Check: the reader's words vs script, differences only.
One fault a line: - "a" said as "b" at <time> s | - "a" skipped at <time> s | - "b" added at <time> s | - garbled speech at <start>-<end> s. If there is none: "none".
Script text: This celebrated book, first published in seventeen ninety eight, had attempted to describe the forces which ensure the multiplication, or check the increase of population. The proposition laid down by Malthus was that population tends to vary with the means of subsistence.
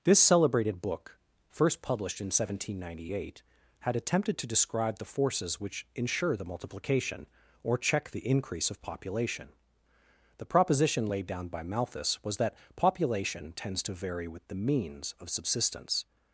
none